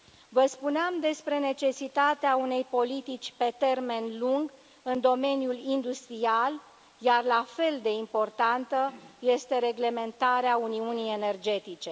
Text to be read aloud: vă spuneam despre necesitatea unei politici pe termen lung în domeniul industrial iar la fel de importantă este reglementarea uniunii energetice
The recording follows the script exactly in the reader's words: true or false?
true